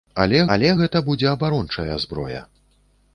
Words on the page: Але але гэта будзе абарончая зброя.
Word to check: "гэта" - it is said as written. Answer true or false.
true